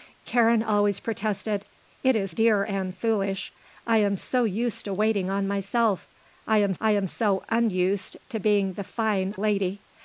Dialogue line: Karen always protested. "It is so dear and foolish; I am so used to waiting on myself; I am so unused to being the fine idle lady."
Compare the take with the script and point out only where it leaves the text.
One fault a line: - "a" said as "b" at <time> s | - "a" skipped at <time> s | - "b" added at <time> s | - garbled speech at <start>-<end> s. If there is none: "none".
- "so" skipped at 2.3 s
- "I am" added at 6.8 s
- "idle" skipped at 9.3 s